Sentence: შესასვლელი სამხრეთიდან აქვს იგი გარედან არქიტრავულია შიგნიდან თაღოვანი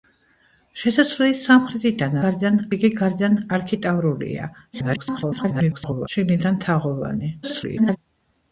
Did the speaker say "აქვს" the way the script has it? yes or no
no